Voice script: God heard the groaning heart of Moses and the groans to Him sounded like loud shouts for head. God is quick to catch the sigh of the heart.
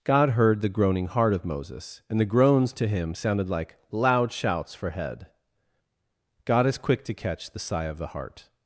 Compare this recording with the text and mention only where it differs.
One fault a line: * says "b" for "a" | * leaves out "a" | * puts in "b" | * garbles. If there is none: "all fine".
all fine